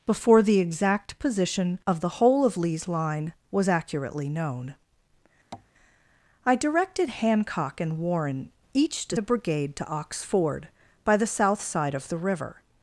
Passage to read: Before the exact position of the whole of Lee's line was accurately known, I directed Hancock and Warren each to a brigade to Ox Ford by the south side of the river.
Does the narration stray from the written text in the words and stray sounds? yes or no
yes